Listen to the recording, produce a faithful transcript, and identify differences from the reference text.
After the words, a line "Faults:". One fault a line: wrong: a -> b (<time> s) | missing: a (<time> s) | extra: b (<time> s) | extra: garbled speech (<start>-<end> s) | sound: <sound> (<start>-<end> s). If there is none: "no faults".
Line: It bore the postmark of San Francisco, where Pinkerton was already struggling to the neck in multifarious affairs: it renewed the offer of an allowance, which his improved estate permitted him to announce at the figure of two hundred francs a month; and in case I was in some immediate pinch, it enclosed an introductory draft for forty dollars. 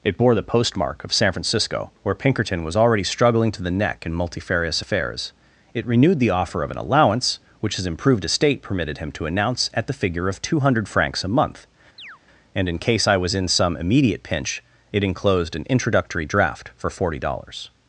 It bore the postmark of San Francisco, where Pinkerton was already struggling to the neck in multifarious affairs: it renewed the offer of an allowance, which his improved estate permitted him to announce at the figure of two hundred francs a month; and in case I was in some immediate pinch, it enclosed an introductory draft for forty dollars.
Faults:
sound: chirp (12.0-12.2 s)